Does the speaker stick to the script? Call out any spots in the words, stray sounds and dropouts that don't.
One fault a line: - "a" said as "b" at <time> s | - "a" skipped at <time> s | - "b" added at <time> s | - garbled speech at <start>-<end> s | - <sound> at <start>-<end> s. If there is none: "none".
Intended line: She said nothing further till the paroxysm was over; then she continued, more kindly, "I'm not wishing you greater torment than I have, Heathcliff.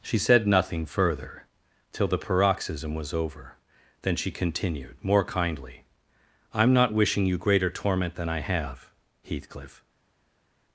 none